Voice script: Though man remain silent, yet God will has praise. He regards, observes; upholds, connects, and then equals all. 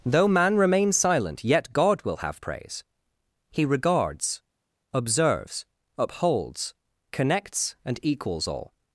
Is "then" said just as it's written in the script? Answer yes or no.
no